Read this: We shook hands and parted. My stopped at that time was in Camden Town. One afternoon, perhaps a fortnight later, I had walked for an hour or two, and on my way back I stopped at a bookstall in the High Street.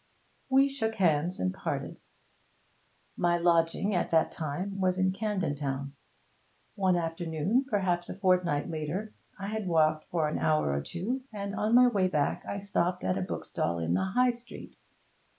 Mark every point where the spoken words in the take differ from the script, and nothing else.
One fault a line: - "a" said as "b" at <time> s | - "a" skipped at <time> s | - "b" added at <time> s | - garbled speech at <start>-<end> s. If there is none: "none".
- "stopped" said as "lodging" at 3.4 s